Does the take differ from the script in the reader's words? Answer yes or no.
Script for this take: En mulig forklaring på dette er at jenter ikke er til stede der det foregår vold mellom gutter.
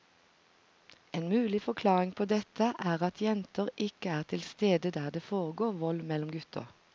no